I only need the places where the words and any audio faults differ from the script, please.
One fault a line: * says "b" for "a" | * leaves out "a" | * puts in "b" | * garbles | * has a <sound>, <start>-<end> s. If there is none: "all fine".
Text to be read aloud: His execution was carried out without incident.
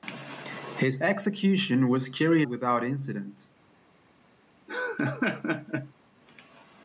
* leaves out "out"
* has a laugh, 4.7-5.9 s